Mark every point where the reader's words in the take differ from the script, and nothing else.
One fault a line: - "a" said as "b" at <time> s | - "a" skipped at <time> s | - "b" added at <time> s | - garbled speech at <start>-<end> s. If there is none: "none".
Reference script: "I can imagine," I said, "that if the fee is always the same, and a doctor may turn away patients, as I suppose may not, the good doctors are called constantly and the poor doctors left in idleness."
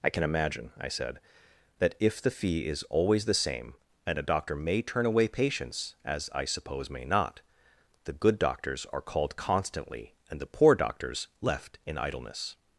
none